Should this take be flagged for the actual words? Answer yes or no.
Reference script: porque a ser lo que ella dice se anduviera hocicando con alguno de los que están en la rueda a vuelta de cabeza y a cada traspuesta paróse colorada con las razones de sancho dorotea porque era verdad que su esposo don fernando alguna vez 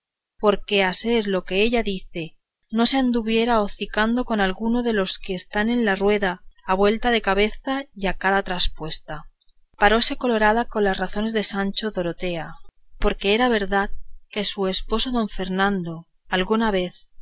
yes